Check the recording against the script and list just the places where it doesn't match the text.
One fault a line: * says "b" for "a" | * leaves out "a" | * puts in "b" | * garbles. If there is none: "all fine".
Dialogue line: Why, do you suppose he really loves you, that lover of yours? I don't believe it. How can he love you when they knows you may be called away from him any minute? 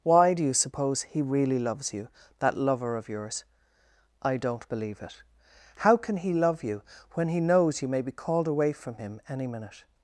* says "he" for "they"